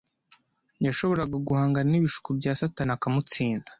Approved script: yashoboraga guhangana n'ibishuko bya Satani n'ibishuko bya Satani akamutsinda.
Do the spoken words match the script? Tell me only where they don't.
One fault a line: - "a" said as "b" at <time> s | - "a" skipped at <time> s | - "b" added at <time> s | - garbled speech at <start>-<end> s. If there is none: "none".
- "n'ibishuko bya Satani" skipped at 2.9 s